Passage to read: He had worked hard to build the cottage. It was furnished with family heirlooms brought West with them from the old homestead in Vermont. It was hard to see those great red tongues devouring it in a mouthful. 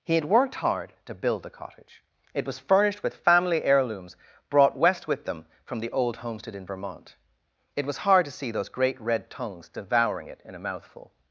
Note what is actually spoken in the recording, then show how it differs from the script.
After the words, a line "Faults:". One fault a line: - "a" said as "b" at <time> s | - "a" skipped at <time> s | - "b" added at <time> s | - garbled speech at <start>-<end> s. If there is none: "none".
He had worked hard to build the cottage. It was furnished with family heirlooms brought West with them from the old homestead in Vermont. It was hard to see those great red tongues devouring it in a mouthful.
Faults:
none